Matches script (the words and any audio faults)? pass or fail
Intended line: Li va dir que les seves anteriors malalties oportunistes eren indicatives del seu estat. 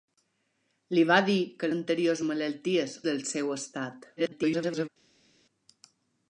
fail